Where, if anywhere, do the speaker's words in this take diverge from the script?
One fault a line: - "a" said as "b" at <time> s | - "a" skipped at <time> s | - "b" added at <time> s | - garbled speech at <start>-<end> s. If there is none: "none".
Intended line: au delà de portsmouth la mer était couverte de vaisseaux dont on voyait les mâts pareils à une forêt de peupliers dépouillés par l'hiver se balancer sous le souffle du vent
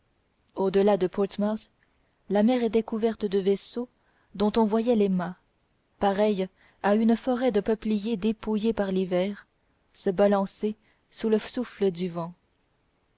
none